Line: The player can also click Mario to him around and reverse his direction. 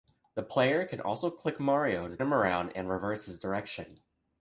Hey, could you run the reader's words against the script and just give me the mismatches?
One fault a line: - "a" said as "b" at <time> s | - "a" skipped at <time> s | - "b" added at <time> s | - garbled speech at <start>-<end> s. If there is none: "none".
none